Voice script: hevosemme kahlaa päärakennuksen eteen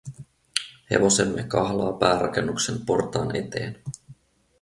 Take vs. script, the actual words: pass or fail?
fail